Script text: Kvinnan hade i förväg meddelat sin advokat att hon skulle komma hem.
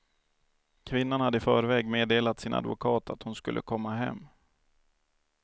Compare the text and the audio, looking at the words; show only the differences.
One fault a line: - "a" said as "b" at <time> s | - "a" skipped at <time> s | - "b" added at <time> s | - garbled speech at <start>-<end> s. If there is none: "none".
none